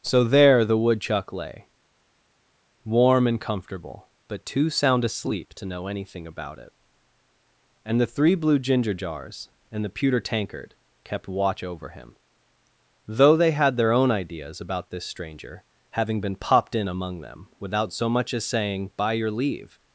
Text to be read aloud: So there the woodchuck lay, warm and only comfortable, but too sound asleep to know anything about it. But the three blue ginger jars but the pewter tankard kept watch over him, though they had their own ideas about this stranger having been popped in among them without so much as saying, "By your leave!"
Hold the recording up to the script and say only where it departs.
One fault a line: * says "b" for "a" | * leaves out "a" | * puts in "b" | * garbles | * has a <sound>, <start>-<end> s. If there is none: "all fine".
* leaves out "only"
* says "And" for "But"
* says "and" for "but"